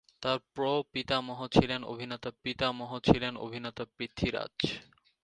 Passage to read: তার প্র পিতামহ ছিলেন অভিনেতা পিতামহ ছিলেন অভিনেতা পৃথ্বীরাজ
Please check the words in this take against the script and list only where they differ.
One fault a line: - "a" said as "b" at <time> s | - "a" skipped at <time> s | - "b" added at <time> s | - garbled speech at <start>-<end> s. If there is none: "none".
none